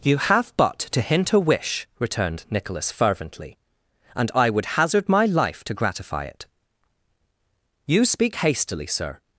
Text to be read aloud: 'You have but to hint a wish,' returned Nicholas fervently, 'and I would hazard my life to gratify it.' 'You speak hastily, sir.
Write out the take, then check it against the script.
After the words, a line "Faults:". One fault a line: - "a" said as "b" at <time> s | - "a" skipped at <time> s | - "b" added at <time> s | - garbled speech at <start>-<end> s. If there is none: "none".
'You have but to hint a wish,' returned Nicholas fervently, 'and I would hazard my life to gratify it.' 'You speak hastily, sir.
Faults:
none